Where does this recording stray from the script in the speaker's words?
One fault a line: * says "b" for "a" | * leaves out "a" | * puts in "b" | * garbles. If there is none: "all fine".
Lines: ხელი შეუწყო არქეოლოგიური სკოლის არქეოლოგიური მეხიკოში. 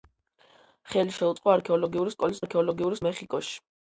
all fine